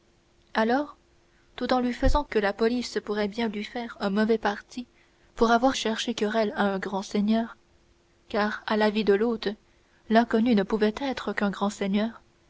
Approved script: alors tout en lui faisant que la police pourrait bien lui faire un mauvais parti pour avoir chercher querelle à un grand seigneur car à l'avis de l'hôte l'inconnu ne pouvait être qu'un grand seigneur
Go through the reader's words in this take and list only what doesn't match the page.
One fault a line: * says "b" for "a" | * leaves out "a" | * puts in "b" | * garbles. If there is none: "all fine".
all fine